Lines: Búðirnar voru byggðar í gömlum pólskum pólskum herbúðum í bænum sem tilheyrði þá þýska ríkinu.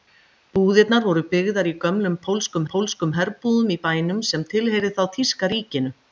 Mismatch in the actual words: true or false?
false